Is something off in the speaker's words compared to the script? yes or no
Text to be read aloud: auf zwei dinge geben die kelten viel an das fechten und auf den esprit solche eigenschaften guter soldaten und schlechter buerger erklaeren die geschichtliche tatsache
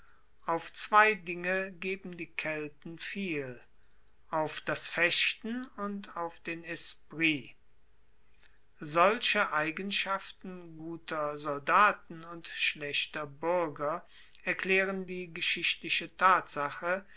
yes